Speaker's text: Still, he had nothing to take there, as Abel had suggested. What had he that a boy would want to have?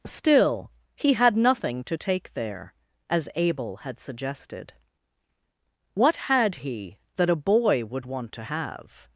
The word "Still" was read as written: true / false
true